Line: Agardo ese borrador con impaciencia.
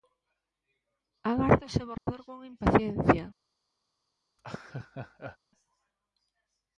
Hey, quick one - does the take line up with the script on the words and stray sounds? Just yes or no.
no